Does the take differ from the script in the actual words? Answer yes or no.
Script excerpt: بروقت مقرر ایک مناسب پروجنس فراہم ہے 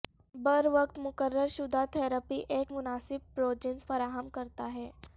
yes